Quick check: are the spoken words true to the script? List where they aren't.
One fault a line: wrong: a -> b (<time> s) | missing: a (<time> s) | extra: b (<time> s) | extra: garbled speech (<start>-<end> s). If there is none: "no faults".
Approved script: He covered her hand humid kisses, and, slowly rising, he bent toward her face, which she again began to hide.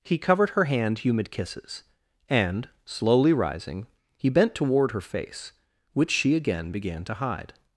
no faults